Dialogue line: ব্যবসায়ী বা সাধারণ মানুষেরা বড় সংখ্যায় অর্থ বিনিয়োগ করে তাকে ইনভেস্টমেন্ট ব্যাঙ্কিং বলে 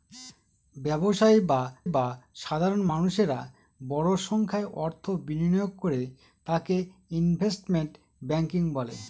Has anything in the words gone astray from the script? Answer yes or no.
yes